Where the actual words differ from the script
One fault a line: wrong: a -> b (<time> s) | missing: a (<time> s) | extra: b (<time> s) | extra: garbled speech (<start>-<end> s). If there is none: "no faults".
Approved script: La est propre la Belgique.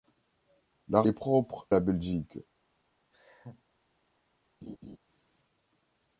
no faults